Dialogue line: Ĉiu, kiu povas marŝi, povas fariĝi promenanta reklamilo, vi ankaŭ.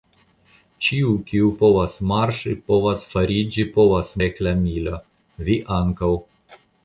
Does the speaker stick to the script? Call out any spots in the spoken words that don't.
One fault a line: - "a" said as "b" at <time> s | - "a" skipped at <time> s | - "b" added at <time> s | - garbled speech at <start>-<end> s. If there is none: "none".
- "promenanta" said as "povas" at 3.7 s